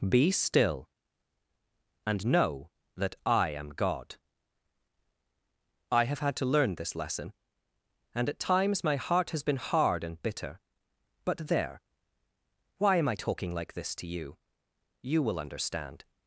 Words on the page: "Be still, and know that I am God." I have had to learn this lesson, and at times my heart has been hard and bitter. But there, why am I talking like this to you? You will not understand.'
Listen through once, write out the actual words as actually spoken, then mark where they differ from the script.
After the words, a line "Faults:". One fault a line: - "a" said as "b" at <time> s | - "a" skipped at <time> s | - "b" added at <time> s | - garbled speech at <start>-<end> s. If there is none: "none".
"Be still, and know that I am God." I have had to learn this lesson, and at times my heart has been hard and bitter. But there, why am I talking like this to you? You will understand.'
Faults:
- "not" skipped at 15.4 s